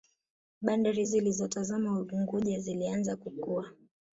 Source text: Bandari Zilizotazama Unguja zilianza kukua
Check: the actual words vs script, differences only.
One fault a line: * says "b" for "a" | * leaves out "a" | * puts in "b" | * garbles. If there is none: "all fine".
all fine